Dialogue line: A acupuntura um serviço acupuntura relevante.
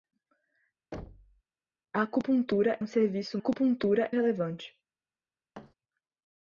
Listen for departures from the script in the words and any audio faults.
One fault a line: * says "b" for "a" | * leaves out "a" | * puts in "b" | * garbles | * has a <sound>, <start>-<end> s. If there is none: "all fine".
* has a thud, 0.9-1.4 s
* has a thud, 5.5-5.7 s